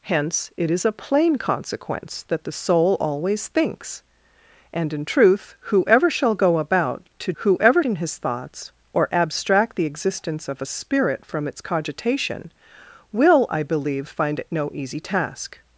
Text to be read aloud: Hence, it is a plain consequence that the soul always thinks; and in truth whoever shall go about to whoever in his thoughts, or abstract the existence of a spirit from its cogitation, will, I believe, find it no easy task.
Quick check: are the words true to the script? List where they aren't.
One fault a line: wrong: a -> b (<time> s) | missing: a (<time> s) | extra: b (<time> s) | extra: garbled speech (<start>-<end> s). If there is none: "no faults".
no faults